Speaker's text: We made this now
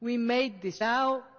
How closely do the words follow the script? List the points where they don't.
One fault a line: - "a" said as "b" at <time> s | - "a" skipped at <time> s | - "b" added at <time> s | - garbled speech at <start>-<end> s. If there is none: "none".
none